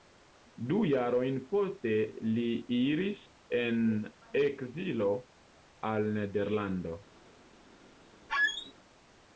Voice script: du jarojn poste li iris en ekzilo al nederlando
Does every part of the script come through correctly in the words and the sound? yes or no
no